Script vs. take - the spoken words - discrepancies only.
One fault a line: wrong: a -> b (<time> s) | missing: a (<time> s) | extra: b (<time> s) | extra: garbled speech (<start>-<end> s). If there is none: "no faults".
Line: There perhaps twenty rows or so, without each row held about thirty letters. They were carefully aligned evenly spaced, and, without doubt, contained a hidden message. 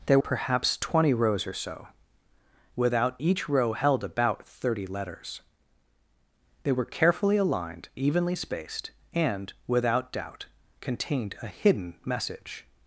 no faults